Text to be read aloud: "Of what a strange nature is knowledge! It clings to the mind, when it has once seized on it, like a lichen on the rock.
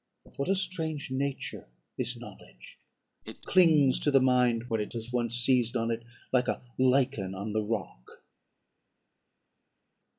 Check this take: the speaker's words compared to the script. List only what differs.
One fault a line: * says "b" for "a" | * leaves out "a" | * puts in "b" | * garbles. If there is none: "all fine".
all fine